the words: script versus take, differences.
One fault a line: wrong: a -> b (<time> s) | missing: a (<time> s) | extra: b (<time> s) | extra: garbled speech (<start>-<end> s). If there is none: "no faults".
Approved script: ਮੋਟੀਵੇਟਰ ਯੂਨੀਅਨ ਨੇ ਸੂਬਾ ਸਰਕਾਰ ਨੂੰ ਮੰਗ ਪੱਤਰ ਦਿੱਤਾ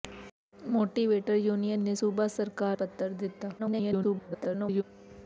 missing: ਨੂੰ ਮੰਗ (2.8 s)
extra: garbled speech (3.6-4.8 s)